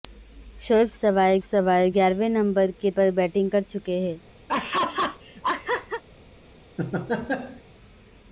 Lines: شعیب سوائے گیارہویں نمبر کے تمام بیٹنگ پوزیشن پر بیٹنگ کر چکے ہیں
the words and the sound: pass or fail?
fail